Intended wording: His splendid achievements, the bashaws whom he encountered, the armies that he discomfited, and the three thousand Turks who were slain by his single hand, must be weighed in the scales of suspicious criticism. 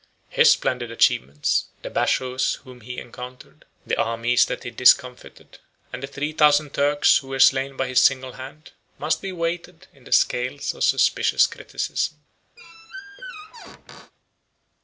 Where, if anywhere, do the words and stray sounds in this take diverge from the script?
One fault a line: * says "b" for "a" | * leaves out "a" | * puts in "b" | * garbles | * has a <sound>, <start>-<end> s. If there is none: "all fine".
* has a squeak, 12.6-14.1 s